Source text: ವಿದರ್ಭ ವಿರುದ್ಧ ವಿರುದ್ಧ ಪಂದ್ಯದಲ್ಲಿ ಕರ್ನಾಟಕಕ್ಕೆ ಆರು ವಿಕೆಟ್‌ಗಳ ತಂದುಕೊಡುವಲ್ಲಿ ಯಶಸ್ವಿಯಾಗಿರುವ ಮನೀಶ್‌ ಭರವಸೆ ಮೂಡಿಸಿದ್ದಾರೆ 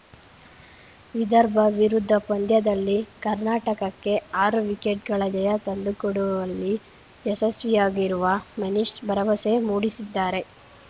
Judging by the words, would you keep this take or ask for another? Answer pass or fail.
fail